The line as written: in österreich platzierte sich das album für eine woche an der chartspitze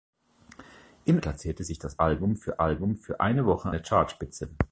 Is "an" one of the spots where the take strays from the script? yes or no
yes